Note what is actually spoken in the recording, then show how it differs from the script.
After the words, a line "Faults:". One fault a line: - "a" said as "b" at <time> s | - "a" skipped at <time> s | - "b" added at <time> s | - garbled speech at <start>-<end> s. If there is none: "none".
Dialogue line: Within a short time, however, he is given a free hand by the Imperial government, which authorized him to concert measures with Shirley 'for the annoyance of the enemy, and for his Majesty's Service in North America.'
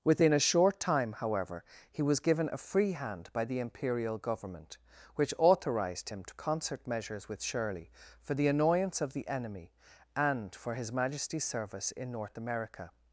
Within a short time, however, he was given a free hand by the Imperial government, which authorized him to concert measures with Shirley 'for the annoyance of the enemy, and for his Majesty's Service in North America.'
Faults:
- "is" said as "was" at 2.0 s